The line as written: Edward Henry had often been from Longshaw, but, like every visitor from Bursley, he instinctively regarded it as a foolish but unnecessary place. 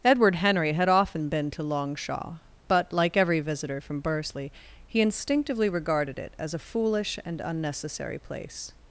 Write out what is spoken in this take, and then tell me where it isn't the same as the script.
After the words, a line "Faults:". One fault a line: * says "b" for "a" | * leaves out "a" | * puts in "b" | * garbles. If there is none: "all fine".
Edward Henry had often been to Longshaw, but, like every visitor from Bursley, he instinctively regarded it as a foolish and unnecessary place.
Faults:
* says "to" for "from"
* says "and" for "but"